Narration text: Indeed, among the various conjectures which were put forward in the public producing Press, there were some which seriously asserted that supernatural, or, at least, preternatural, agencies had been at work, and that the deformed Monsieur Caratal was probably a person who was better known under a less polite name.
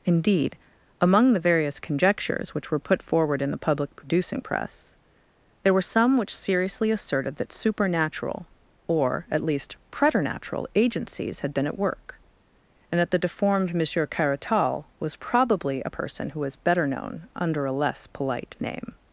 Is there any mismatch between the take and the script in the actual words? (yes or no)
no